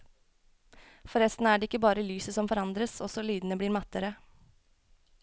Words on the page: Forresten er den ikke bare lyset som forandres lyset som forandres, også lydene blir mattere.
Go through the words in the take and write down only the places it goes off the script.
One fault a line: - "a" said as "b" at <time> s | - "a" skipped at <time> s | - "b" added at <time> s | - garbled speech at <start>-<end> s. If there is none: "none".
- "den" said as "det" at 1.6 s
- "lyset som forandres" skipped at 3.0 s